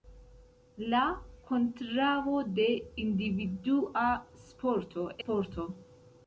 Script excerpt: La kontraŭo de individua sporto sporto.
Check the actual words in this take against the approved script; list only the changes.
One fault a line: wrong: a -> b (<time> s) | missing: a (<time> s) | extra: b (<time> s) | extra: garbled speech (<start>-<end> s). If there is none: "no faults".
no faults